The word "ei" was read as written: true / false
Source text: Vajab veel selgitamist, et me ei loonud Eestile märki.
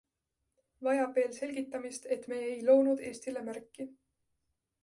true